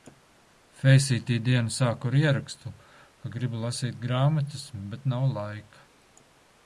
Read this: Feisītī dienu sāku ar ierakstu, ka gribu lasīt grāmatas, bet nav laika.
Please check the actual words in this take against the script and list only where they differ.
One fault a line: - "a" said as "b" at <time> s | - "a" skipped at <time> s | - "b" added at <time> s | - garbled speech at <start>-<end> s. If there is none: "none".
none